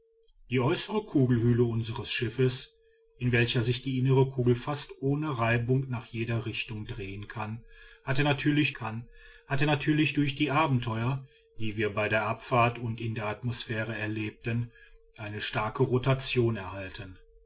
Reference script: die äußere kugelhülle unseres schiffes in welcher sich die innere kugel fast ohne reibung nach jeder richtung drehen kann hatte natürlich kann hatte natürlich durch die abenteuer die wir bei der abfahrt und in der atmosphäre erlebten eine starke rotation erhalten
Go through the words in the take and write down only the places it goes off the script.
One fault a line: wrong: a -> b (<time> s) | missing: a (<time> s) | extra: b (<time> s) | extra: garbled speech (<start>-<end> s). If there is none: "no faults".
no faults